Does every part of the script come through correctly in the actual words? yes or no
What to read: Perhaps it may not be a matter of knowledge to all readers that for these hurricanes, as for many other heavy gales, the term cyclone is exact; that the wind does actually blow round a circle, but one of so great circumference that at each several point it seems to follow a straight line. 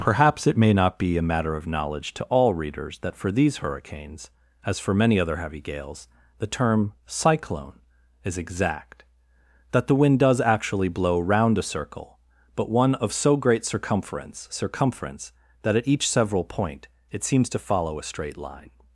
no